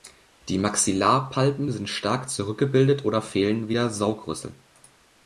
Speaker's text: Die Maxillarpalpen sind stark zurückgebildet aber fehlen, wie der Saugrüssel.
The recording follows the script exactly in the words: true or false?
false